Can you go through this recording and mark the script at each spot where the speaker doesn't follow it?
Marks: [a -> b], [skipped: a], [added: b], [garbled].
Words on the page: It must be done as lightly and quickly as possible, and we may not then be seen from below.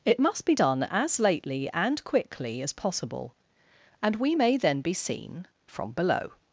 It must be done as [lightly -> lately] and quickly as possible, and we may [skipped: not] then be seen from below.